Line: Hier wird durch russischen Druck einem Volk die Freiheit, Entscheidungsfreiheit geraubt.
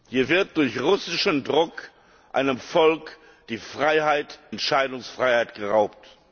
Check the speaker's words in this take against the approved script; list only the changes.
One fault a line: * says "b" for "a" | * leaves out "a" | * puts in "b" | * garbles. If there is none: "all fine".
all fine